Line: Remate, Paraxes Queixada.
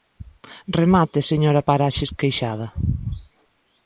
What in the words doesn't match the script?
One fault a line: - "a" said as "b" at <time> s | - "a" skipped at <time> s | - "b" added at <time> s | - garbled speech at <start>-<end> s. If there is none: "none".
- "señora" added at 1.3 s